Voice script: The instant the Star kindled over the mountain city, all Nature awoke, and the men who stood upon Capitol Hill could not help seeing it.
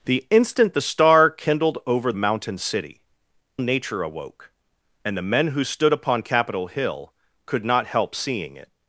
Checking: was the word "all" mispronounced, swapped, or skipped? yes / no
yes